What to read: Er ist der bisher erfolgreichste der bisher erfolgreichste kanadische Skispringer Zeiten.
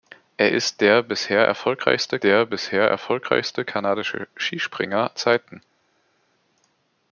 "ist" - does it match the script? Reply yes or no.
yes